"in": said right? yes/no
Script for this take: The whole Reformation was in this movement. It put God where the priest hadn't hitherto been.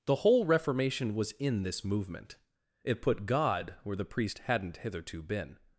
yes